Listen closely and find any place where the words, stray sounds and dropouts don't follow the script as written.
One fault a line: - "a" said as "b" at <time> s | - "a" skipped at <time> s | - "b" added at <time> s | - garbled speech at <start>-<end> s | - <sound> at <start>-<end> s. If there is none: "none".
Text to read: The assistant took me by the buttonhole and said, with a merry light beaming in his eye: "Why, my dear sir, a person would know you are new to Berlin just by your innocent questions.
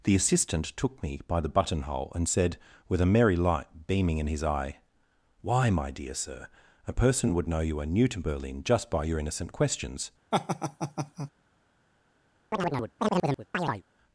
- laugh at 10.3-11.3 s
- chirp at 12.5-13.8 s